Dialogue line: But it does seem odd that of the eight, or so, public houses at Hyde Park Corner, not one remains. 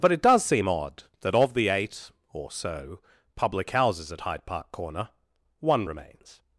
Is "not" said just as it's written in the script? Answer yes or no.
no